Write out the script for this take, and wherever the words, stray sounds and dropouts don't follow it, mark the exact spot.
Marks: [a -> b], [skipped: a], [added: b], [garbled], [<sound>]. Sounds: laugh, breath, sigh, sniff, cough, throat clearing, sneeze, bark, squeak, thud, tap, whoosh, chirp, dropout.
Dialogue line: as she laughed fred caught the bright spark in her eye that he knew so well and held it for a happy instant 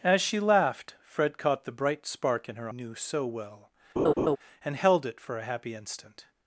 as she laughed fred caught the bright spark in her [skipped: eye that he] knew so well [laugh] and held it for a happy instant